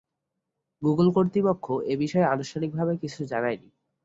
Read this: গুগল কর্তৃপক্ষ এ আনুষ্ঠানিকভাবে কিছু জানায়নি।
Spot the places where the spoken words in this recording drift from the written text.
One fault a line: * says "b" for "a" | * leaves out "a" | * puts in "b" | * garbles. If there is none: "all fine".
* puts in "বিষয়ে"